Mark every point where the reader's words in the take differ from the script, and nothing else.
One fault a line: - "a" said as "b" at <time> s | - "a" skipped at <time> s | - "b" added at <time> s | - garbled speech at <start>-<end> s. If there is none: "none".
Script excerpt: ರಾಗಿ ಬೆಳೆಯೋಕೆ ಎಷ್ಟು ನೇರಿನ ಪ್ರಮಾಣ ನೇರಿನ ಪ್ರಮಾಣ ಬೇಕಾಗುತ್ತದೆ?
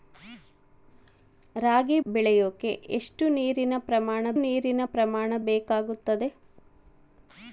none